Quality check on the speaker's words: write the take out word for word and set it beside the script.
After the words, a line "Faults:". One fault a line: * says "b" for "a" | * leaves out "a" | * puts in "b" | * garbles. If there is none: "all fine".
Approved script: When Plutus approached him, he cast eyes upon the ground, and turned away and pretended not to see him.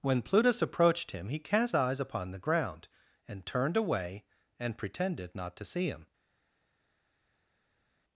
When Plutus approached him, he cast eyes upon the ground, and turned away and pretended not to see him.
Faults:
all fine